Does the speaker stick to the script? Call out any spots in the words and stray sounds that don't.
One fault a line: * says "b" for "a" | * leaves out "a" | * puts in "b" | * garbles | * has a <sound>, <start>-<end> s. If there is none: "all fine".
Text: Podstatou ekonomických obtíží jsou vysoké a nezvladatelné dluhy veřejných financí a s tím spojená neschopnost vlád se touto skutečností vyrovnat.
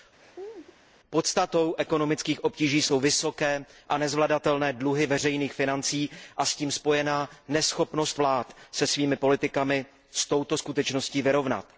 * has a laugh, 0.2-0.8 s
* puts in "svými politikami s"